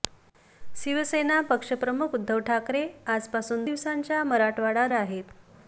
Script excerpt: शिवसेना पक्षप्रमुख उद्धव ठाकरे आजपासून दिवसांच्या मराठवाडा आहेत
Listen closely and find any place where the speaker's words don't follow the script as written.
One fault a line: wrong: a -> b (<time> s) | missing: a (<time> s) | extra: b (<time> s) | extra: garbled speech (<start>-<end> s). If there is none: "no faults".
no faults